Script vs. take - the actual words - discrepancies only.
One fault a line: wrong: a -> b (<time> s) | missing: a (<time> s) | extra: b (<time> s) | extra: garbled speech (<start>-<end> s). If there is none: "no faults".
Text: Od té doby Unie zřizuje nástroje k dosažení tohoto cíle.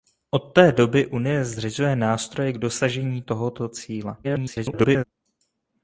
extra: garbled speech (4.2-5.0 s)